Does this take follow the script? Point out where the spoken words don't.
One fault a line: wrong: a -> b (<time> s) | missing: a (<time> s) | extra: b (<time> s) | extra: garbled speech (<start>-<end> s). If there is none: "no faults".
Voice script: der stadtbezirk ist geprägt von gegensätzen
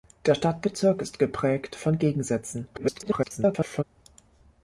extra: garbled speech (2.7-3.8 s)